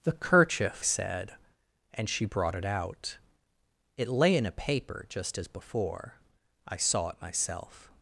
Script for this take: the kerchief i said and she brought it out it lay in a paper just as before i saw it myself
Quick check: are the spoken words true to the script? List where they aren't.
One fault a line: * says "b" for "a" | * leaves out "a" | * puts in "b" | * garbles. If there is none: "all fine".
* leaves out "i"